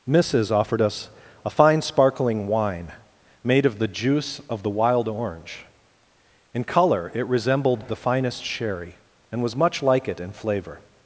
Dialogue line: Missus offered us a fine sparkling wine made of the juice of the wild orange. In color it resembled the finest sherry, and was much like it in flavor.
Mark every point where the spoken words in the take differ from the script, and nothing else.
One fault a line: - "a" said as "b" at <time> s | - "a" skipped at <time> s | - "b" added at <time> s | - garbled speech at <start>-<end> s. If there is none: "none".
none